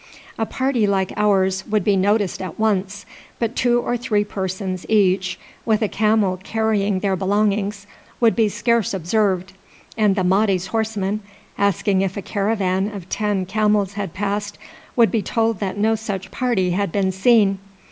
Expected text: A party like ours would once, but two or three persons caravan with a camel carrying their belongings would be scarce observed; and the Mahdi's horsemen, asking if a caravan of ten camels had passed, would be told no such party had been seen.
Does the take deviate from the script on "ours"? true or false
false